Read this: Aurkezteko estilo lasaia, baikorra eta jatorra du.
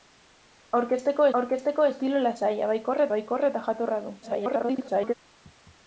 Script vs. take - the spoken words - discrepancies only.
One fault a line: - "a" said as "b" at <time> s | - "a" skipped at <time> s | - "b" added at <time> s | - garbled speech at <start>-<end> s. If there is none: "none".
- "aurkezteko" added at 1.4 s
- "baikorra" added at 3.2 s
- garbled speech at 4.2-5.1 s